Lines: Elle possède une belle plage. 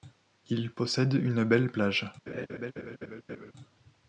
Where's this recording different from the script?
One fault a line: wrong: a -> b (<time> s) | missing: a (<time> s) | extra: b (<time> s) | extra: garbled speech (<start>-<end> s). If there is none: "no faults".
wrong: Elle -> Il (0.5 s)